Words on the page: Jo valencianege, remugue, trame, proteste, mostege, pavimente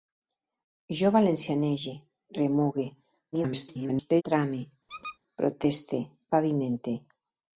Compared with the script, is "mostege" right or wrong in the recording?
wrong